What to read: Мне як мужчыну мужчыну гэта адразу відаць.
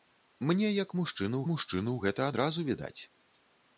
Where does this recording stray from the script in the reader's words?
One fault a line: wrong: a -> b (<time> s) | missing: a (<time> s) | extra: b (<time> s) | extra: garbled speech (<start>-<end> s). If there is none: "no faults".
no faults